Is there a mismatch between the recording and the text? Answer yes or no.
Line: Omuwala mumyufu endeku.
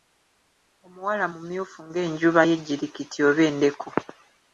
yes